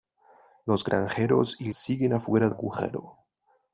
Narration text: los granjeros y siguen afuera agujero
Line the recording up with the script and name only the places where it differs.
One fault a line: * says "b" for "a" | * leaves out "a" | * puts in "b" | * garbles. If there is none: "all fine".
all fine